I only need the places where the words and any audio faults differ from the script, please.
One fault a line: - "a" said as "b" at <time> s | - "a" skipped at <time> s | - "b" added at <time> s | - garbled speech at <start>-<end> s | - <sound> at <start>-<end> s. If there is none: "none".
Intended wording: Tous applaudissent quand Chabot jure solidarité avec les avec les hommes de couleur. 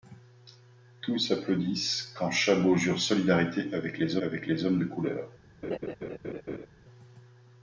- laugh at 5.6-6.7 s